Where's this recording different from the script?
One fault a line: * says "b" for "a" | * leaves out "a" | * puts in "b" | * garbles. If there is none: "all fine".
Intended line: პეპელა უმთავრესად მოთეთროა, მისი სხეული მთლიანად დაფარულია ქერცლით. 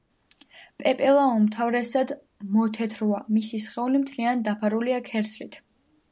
all fine